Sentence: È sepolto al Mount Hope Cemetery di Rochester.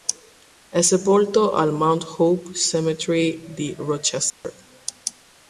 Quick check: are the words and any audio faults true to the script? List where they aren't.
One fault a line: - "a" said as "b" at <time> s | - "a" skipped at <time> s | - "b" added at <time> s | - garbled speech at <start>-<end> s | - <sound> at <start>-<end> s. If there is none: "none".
- dropout at 4.3-4.4 s